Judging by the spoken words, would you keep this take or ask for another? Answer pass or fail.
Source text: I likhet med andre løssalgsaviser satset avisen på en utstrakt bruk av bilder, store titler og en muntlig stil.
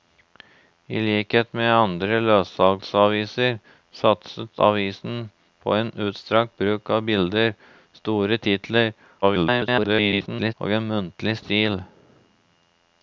fail